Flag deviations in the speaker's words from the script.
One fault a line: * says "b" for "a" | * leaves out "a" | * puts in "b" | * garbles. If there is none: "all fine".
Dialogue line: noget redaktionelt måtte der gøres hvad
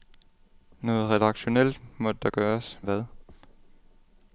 all fine